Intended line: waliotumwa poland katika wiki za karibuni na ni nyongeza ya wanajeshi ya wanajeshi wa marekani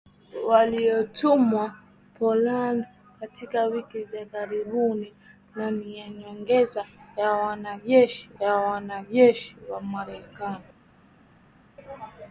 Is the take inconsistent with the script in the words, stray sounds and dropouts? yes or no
no